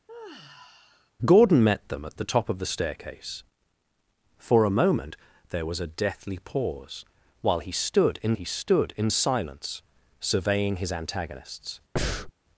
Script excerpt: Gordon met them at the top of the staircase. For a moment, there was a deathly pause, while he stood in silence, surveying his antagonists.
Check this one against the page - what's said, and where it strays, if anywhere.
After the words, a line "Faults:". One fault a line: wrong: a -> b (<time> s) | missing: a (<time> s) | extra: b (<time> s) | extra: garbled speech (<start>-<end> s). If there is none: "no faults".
Gordon met them at the top of the staircase. For a moment, there was a deathly pause, while he stood in he stood in silence, surveying his antagonists.
Faults:
extra: he stood in (8.3 s)